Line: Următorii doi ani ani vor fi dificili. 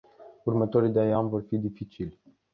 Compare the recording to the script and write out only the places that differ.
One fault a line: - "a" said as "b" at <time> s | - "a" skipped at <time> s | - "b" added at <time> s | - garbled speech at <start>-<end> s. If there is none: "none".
- "ani" skipped at 1.3 s